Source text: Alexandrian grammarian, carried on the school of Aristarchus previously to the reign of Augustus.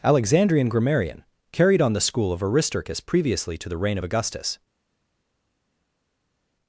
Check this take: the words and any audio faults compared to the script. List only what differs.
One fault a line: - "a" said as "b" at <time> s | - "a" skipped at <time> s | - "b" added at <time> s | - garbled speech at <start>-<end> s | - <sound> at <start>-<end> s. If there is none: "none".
none